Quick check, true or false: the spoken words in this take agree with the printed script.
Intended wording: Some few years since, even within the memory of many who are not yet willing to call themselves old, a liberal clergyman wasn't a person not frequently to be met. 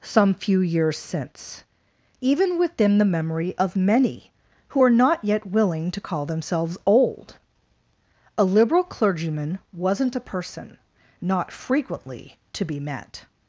true